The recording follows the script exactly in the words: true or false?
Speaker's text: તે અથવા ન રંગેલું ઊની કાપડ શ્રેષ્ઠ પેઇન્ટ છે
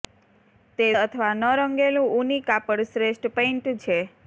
true